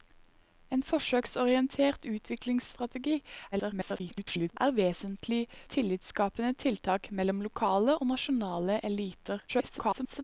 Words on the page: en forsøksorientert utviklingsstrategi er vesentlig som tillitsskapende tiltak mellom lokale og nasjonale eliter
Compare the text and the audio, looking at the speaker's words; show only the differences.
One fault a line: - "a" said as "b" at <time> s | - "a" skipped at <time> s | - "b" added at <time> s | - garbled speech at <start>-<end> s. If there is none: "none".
- garbled speech at 3.5-4.6 s
- "som" skipped at 5.4 s
- garbled speech at 9.5-10.2 s